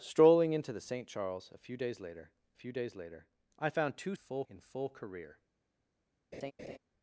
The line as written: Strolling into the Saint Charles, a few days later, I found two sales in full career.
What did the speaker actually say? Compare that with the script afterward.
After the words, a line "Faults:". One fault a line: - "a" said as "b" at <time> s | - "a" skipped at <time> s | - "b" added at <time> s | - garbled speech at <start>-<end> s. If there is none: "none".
Strolling into the Saint Charles, a few days later few days later, I found two full in full career.
Faults:
- "few days later" added at 2.5 s
- "sales" said as "full" at 4.1 s